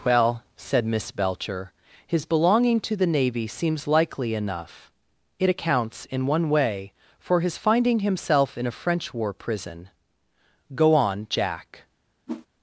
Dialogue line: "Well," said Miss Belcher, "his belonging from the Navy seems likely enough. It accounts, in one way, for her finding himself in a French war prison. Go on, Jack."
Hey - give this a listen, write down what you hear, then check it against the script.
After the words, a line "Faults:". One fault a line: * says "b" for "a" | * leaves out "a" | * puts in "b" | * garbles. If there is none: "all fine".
"Well," said Miss Belcher, "his belonging to the Navy seems likely enough. It accounts, in one way, for his finding himself in a French war prison. Go on, Jack."
Faults:
* says "to" for "from"
* says "his" for "her"